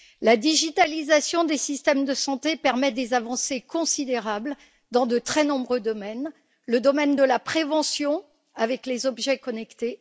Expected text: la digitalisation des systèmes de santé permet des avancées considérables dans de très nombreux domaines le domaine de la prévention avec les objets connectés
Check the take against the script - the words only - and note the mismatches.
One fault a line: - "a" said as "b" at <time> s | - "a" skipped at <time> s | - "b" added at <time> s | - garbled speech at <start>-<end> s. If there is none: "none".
none